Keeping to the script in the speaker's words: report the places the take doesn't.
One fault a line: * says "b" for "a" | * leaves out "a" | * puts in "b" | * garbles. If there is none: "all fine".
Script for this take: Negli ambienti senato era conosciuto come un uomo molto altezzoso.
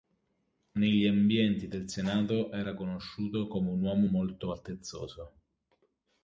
* puts in "del"